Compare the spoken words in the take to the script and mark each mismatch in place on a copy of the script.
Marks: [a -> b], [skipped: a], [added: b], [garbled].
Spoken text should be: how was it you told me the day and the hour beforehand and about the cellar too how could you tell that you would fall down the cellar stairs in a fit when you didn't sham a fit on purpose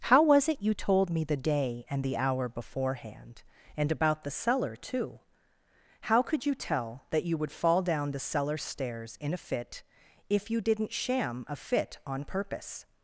how was it you told me the day and the hour beforehand and about the cellar too how could you tell that you would fall down the cellar stairs in a fit [when -> if] you didn't sham a fit on purpose